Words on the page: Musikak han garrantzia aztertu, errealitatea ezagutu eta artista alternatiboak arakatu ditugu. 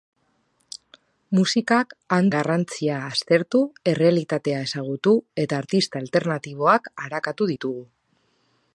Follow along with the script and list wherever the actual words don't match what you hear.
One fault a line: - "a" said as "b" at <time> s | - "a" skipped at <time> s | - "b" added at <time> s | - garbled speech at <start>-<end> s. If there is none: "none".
none